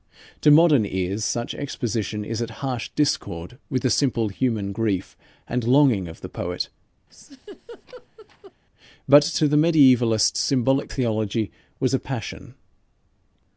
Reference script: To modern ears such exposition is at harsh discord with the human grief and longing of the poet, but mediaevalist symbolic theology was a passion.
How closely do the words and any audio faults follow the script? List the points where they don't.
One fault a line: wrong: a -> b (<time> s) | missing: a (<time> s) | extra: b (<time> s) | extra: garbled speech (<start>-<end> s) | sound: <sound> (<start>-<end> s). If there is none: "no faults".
extra: simple (3.9 s)
sound: laugh (7.1-8.5 s)
extra: to the (9.2 s)